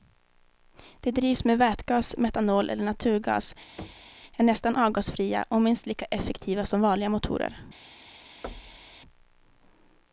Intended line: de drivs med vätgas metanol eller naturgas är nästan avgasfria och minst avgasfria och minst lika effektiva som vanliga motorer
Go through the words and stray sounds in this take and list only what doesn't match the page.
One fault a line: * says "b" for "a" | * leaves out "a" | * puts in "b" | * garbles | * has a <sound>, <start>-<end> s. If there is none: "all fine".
* has a thud, 3.8-4.2 s
* leaves out "avgasfria och minst"
* has a thud, 8.4-9.0 s